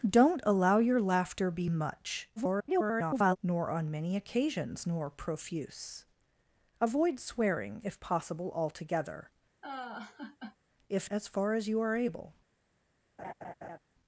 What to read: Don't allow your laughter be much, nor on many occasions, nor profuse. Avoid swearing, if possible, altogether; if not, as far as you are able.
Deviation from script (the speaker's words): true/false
true